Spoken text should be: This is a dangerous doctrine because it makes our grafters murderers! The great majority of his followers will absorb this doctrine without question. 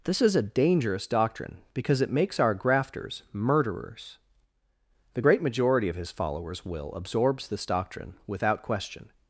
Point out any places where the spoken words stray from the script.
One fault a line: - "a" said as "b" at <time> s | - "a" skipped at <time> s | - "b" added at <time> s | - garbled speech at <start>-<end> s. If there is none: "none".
- "absorb" said as "absorbs" at 6.9 s